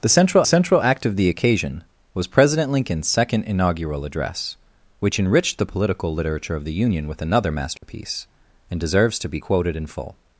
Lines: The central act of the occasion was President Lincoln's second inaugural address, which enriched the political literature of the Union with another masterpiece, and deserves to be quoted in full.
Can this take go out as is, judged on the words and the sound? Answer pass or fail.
fail